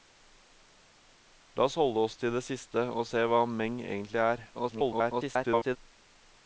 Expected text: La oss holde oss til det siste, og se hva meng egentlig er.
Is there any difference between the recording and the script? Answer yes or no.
yes